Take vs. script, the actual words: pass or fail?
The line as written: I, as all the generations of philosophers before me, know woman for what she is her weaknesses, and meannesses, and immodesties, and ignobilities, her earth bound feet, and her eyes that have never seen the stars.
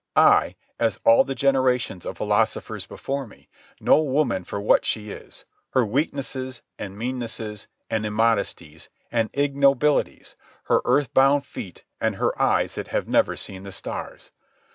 pass